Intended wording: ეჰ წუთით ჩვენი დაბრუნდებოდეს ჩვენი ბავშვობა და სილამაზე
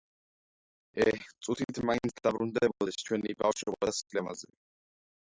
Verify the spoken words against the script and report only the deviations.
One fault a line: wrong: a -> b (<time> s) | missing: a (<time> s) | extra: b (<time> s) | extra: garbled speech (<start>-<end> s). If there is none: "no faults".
wrong: ჩვენი -> მაინც (1.9 s)